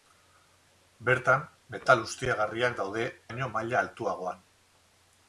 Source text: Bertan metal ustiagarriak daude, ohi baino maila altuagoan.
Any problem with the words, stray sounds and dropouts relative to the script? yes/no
yes